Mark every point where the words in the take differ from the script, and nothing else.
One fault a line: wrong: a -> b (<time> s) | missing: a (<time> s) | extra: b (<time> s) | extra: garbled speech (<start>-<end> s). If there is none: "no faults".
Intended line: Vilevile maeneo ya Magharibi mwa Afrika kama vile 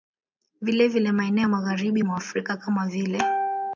no faults